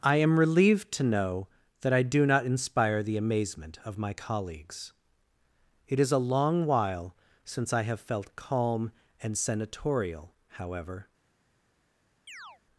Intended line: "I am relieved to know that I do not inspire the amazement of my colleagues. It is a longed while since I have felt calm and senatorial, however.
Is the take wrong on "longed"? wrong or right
wrong